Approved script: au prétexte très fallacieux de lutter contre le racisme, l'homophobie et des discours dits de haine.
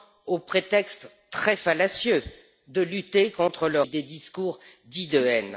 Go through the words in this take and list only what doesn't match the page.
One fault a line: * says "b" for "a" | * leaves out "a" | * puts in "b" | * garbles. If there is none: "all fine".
* leaves out "racisme l'homophobie"